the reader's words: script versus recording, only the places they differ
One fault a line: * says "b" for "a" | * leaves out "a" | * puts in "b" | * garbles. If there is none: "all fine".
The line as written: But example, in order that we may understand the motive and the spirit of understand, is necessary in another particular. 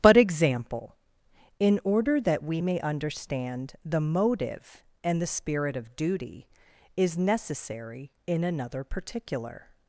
* says "duty" for "understand"